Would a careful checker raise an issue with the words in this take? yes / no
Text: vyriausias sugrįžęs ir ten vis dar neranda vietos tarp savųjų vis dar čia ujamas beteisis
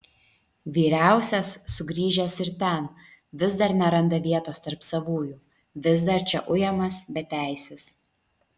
no